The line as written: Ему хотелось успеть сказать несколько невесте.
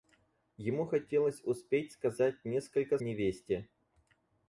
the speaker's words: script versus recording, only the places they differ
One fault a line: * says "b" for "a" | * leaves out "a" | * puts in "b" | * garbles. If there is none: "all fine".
all fine